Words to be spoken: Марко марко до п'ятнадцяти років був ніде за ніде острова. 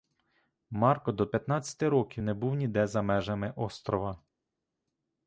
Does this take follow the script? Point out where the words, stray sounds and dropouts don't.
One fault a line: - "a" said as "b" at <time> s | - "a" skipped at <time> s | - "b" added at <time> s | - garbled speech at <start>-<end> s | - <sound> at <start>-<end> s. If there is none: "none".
- "марко" skipped at 1.1 s
- "не" added at 2.2 s
- "ніде" said as "межами" at 3.0 s